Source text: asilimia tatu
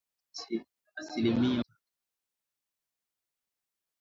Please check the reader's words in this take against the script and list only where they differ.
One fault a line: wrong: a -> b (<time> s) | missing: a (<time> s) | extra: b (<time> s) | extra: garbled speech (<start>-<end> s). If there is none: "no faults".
no faults